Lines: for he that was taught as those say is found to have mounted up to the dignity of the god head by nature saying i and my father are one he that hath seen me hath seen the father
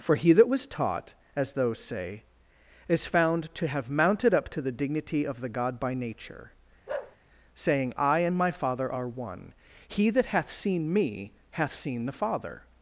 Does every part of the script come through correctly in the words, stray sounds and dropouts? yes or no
no